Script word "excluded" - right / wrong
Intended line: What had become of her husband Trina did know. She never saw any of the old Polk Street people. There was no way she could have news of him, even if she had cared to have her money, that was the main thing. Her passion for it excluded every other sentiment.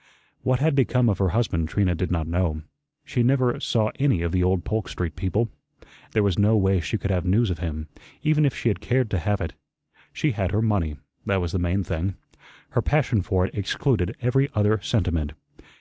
right